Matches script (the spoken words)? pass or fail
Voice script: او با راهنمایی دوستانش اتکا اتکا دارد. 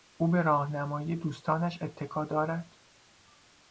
fail